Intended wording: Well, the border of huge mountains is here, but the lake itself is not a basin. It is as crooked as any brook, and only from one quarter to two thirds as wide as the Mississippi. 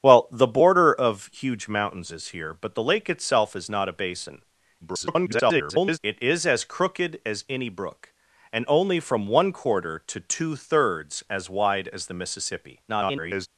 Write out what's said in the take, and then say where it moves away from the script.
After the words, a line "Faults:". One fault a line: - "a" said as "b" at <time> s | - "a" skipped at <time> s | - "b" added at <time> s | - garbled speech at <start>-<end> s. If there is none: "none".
Well, the border of huge mountains is here, but the lake itself is not a basin. [garbled] It is as crooked as any brook, and only from one quarter to two thirds as wide as the Mississippi. [garbled]
Faults:
- garbled speech at 4.8-6.0 s
- garbled speech at 12.9-13.5 s